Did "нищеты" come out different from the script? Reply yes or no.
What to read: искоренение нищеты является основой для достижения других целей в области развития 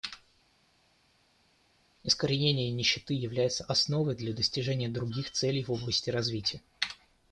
no